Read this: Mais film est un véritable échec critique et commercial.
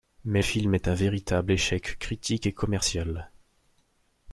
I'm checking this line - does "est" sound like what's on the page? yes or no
yes